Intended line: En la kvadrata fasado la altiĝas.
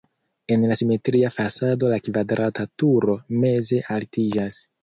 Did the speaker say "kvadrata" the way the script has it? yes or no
no